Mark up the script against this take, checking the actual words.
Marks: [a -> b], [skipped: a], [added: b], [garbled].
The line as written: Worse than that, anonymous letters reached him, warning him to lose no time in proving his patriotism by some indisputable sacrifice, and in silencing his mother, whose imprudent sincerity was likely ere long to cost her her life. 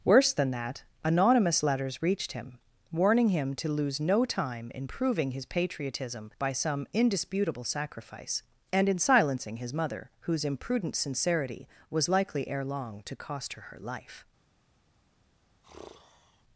Worse than that, anonymous letters reached him, warning him to lose no time in proving his patriotism by some indisputable sacrifice, and in silencing his mother, whose imprudent sincerity was likely ere long to cost her her life.